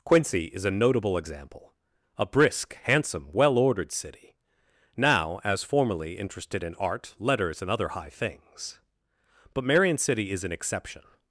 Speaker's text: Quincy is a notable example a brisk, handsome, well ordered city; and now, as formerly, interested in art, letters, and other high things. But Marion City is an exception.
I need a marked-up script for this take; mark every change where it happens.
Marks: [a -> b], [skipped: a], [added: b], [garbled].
Quincy is a notable example a brisk, handsome, well ordered city; [skipped: and] now, as formerly, interested in art, letters, and other high things. But Marion City is an exception.